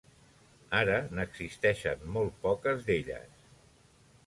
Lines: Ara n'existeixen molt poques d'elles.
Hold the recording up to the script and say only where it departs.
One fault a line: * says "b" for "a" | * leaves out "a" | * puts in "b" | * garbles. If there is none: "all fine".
all fine